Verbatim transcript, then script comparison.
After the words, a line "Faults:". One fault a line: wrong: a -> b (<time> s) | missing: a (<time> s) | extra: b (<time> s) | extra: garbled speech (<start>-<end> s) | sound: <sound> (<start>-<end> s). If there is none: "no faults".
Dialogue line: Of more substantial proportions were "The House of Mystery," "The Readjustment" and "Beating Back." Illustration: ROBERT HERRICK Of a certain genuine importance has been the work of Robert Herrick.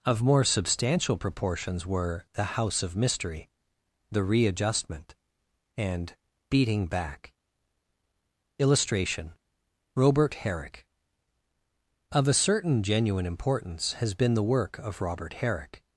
Of more substantial proportions were "The House of Mystery," "The Readjustment" and "Beating Back." Illustration: ROBERT HERRICK Of a certain genuine importance has been the work of Robert Herrick.
Faults:
no faults